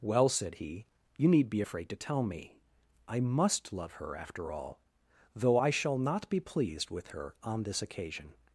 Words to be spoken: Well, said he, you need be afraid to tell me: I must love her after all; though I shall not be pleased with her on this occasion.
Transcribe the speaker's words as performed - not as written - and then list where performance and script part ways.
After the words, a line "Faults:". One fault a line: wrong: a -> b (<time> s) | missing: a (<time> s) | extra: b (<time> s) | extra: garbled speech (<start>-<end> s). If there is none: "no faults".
Well, said he, you need be afraid to tell me: I must love her after all; though I shall not be pleased with her on this occasion.
Faults:
no faults